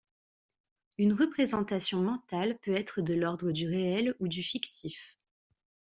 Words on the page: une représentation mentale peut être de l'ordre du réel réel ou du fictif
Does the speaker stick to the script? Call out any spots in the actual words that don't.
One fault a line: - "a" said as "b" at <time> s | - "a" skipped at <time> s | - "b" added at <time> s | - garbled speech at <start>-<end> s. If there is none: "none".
- "réel" skipped at 4.2 s